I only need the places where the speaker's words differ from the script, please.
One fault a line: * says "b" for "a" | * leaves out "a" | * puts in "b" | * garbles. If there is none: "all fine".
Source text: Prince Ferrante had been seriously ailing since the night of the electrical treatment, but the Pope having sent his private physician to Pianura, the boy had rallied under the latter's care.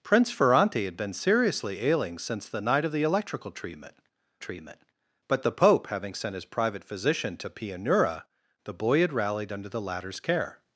* puts in "treatment"